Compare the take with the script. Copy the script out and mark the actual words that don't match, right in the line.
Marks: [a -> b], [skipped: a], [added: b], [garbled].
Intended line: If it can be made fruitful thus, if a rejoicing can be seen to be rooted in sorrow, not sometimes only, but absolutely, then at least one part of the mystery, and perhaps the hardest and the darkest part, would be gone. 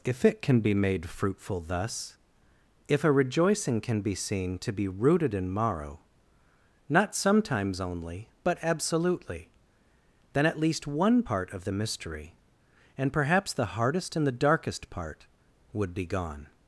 If it can be made fruitful thus, if a rejoicing can be seen to be rooted in [sorrow, -> morrow] not sometimes only, but absolutely, then at least one part of the mystery, and perhaps the hardest and the darkest part, would be gone.